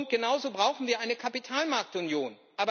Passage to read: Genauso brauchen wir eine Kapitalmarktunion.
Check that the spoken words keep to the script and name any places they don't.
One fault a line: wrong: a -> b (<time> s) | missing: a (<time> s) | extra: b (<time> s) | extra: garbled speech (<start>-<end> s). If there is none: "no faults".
no faults